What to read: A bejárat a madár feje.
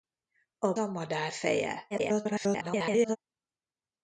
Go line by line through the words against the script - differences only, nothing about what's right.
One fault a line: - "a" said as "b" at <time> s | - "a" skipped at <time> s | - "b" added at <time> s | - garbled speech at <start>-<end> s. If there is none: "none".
- "bejárat" skipped at 0.7 s
- garbled speech at 1.9-3.2 s